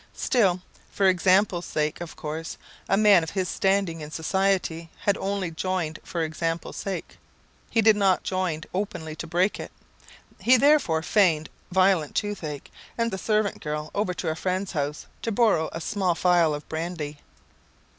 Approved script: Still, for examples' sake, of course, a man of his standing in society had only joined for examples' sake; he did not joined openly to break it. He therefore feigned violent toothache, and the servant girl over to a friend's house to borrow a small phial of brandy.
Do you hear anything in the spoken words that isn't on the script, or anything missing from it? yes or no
no